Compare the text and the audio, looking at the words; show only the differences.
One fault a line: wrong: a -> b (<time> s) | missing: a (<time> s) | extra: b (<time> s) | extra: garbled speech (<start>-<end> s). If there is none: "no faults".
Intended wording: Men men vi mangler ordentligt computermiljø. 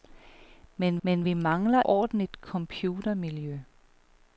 no faults